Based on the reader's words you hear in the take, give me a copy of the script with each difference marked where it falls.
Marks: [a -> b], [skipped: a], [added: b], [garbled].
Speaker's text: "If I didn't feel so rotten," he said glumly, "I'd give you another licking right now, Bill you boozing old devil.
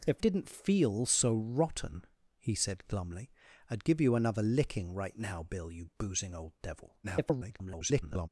"If [skipped: I] didn't feel so rotten," he said glumly, "I'd give you another licking right now, Bill you boozing old devil. [garbled]